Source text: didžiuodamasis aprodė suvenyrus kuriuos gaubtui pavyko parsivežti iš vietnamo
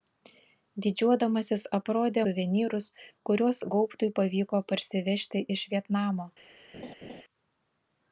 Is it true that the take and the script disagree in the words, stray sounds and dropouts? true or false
true